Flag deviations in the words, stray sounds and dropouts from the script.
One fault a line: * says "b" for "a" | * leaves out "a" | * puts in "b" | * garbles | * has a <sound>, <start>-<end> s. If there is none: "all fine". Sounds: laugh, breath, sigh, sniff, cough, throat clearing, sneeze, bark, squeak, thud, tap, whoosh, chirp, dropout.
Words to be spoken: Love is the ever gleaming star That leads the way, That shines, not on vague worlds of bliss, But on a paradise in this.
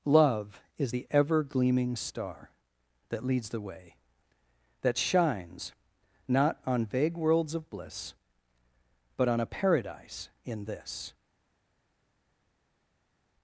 all fine